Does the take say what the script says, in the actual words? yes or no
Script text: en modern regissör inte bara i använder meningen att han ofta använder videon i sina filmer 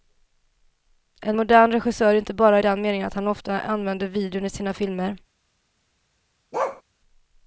no